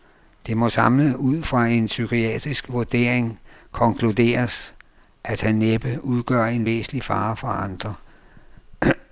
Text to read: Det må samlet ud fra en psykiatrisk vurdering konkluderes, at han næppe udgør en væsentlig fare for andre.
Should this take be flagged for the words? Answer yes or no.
no